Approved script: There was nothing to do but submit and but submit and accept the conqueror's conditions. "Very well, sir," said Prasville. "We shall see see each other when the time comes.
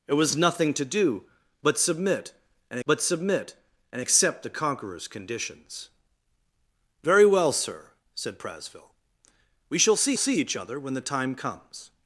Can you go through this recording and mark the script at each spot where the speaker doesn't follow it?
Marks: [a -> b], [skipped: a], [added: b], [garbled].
There was nothing to do but submit and but submit and accept the conqueror's conditions. "Very well, sir," said Prasville. "We shall see see each other when the time comes.